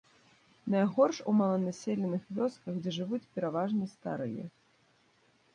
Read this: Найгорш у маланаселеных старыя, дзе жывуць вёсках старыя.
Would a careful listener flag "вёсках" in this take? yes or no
yes